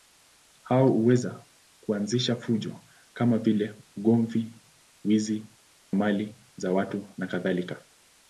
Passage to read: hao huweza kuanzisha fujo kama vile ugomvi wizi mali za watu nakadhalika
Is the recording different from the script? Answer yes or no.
no